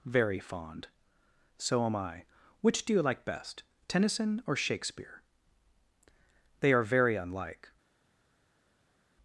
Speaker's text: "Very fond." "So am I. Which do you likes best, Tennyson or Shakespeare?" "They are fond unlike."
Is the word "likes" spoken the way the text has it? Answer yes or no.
no